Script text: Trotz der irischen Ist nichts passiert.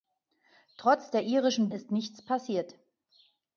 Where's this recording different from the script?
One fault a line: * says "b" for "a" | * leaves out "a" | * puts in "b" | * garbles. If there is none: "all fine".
all fine